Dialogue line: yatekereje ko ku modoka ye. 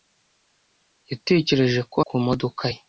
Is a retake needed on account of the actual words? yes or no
no